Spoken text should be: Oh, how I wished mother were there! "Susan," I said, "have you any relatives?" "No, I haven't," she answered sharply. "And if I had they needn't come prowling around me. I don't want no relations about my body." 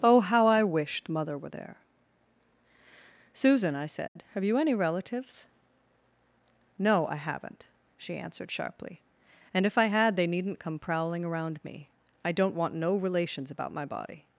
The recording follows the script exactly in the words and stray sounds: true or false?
false